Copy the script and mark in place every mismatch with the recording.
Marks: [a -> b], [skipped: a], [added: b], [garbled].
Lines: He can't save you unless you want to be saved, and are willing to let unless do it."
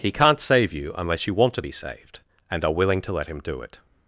He can't save you unless you want to be saved, and are willing to let [unless -> him] do it."